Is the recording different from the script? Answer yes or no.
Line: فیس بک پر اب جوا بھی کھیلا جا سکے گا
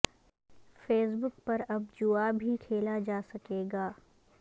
no